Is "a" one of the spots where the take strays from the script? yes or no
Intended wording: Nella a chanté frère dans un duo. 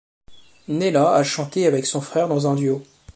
no